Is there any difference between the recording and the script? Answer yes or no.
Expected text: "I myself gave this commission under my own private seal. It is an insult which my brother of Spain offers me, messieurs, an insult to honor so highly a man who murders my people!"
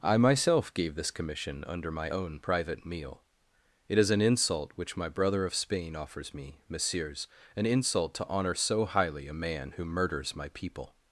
yes